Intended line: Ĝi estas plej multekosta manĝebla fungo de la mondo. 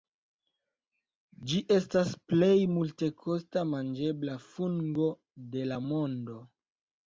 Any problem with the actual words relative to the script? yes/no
no